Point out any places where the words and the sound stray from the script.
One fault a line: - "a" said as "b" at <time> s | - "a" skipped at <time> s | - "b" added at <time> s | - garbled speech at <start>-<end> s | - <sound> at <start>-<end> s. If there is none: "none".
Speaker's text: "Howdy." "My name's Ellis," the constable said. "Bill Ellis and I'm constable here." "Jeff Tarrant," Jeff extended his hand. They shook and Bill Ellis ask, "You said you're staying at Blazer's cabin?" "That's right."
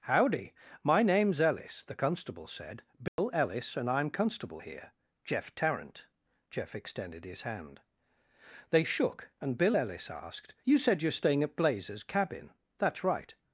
- dropout at 3.1-3.2 s
- "ask" said as "asked" at 10.1 s